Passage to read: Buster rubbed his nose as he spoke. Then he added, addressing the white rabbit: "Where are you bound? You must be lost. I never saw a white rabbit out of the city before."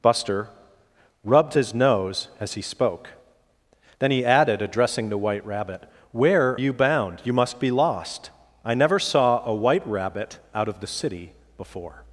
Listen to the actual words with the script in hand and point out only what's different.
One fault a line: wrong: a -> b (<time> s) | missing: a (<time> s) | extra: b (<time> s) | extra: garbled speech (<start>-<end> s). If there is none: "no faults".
missing: are (6.6 s)